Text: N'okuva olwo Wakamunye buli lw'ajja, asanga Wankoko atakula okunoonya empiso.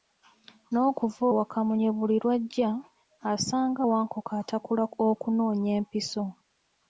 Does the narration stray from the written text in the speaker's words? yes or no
yes